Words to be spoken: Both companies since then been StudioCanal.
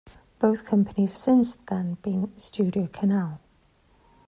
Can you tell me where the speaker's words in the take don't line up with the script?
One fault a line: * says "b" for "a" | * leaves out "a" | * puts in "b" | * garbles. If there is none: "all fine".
all fine